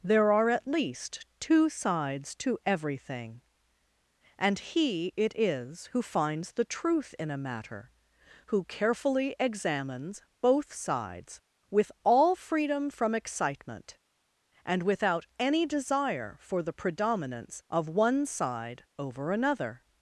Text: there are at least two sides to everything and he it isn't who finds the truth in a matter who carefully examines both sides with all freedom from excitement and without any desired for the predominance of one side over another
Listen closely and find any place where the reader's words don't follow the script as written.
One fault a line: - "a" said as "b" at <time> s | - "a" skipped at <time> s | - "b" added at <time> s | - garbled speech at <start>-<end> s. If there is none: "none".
- "isn't" said as "is" at 5.4 s
- "desired" said as "desire" at 15.7 s